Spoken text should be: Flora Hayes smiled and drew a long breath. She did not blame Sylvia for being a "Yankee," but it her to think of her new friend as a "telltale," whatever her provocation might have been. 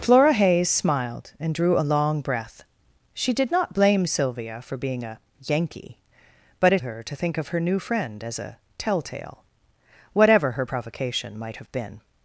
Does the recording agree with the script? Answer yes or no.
yes